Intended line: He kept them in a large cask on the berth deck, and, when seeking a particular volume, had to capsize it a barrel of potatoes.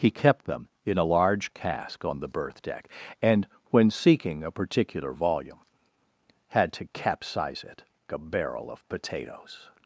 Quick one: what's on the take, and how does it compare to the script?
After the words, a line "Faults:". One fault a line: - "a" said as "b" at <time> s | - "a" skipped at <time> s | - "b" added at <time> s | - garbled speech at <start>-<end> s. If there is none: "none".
He kept them in a large cask on the berth deck, and, when seeking a particular volume, had to capsize it a barrel of potatoes.
Faults:
none